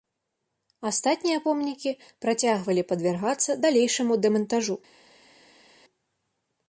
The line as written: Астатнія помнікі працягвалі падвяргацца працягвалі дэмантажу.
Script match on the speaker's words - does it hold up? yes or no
no